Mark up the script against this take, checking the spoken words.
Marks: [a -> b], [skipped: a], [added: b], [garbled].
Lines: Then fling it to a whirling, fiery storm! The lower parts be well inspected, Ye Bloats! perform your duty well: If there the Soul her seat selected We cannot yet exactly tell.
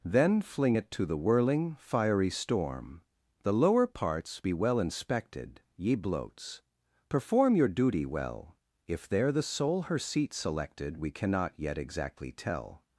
Then fling it to [a -> the] whirling, fiery storm! The lower parts be well inspected, Ye Bloats! perform your duty well: If there the Soul her seat selected We cannot yet exactly tell.